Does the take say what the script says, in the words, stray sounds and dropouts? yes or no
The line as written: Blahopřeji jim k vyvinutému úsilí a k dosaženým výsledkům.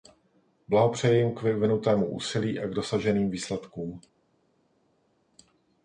yes